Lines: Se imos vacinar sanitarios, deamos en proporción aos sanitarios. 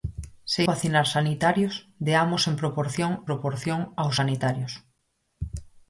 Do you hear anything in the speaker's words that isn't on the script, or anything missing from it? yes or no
yes